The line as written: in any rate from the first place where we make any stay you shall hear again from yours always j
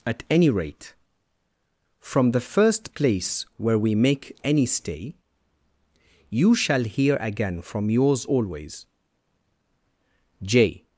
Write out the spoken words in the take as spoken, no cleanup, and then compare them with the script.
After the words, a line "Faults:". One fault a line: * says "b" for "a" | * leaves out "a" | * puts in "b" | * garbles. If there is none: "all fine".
at any rate from the first place where we make any stay you shall hear again from yours always j
Faults:
* says "at" for "in"